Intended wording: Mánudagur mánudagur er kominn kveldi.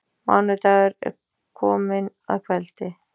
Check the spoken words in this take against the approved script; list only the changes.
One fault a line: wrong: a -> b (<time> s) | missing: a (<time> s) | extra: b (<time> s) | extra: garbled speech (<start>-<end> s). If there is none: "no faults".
missing: mánudagur (0.9 s)
extra: að (2.3 s)